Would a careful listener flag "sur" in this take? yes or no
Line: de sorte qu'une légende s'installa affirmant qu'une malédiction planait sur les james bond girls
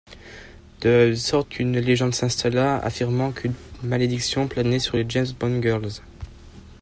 no